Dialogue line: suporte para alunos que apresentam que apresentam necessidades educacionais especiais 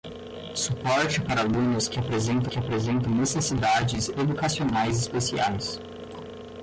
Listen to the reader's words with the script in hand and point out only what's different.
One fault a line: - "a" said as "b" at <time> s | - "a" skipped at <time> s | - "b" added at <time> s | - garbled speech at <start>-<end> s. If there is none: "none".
none